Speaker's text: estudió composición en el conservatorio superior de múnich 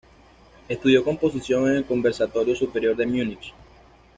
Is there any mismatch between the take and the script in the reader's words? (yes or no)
no